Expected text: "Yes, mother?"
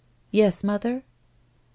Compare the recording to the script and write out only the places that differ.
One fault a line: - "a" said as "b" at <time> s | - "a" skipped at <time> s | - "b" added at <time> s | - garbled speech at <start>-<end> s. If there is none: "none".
none